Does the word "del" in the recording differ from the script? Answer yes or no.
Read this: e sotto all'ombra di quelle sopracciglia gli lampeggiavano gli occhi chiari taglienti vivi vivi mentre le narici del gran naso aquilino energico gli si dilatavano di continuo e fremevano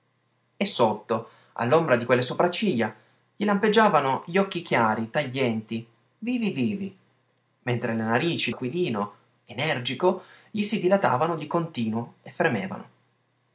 yes